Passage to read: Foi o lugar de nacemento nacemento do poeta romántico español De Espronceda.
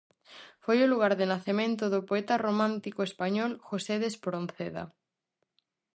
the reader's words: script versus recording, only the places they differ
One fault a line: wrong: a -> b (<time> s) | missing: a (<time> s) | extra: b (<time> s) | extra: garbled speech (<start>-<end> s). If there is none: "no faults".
missing: nacemento (1.8 s)
extra: José (3.7 s)